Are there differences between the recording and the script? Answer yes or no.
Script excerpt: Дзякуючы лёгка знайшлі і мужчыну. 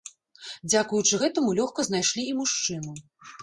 yes